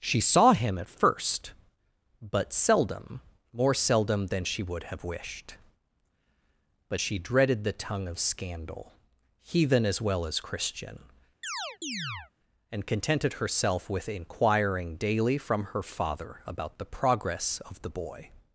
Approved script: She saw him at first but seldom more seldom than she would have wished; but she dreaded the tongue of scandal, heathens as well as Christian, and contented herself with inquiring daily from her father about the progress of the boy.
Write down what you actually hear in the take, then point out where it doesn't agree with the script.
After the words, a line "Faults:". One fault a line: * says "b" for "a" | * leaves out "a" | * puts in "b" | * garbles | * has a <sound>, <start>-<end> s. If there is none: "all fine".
She saw him at first but seldom more seldom than she would have wished; but she dreaded the tongue of scandal, heathen as well as Christian, and contented herself with inquiring daily from her father about the progress of the boy.
Faults:
* says "heathen" for "heathens"
* has a chirp, 11.4-12.3 s